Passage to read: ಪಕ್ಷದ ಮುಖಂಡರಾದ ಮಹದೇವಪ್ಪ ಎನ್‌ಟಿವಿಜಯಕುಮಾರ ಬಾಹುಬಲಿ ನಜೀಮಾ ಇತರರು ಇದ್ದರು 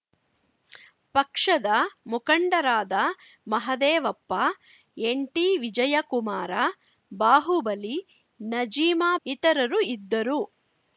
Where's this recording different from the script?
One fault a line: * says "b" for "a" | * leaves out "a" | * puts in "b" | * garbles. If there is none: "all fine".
all fine